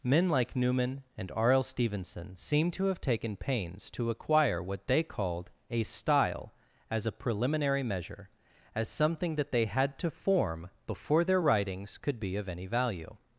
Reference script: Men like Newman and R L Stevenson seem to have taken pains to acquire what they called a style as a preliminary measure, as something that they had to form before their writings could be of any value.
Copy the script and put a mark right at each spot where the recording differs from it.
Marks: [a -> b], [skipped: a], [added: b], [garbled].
Men like Newman and R L Stevenson seem to have taken pains to acquire what they called a style as a preliminary measure, as something that they had to form before their writings could be of any value.